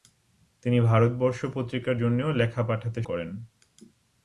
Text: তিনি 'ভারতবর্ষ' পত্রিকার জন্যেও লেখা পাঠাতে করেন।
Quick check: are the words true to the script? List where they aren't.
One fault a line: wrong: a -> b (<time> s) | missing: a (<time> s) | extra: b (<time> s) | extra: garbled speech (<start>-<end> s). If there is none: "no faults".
no faults